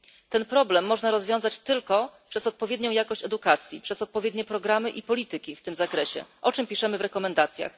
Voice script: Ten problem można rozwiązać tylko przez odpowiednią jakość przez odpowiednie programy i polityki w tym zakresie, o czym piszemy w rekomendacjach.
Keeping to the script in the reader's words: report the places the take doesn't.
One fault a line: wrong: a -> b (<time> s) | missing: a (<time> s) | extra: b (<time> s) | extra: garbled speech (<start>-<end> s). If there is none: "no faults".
extra: edukacji (3.2 s)